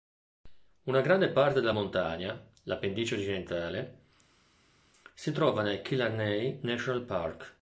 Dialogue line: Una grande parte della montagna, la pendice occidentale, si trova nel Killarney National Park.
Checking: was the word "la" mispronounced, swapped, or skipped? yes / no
no